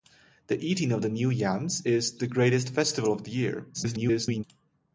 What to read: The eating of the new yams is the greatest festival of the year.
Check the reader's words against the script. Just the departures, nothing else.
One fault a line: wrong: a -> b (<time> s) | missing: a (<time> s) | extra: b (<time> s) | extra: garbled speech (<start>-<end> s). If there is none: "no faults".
extra: garbled speech (3.7-4.4 s)